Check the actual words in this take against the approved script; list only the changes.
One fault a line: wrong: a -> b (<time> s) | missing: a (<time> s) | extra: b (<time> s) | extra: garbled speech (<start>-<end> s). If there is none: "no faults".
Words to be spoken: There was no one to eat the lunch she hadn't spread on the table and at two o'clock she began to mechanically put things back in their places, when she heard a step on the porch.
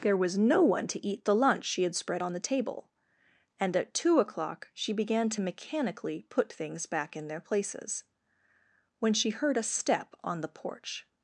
wrong: hadn't -> had (1.8 s)